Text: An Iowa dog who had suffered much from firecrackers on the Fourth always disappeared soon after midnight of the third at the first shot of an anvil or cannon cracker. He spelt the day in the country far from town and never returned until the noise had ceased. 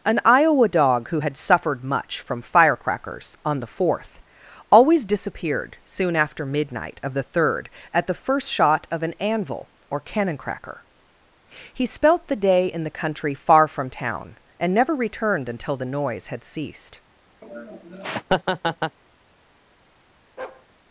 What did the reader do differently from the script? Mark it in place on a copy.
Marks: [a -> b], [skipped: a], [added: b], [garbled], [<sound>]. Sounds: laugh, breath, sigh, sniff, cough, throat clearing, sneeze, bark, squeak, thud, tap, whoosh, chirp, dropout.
An Iowa dog who had suffered much from firecrackers on the Fourth always disappeared soon after midnight of the third at the first shot of an anvil or cannon cracker. He spelt the day in the country far from town and never returned until the noise had ceased. [laugh] [bark]